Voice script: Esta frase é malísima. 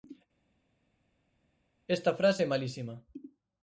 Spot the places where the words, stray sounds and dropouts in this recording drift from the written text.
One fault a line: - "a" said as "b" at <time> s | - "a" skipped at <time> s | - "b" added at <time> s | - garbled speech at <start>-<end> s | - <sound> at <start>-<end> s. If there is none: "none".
none